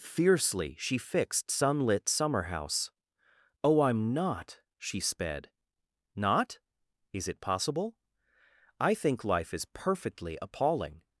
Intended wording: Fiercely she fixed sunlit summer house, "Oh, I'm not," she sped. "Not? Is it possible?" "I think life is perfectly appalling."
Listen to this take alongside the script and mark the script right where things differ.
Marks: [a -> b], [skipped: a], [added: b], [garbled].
Fiercely she fixed sunlit summer house, "Oh, I'm not," she sped. "Not? Is it possible?" "I think life is perfectly appalling."